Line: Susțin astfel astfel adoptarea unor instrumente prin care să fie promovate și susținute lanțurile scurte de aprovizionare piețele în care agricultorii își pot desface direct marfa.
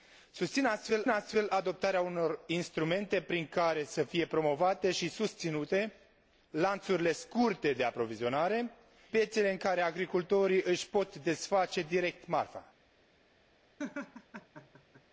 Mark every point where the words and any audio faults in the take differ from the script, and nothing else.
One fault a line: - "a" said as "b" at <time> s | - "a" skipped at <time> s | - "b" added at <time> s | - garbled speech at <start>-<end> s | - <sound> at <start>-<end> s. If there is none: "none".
- laugh at 13.8-15.0 s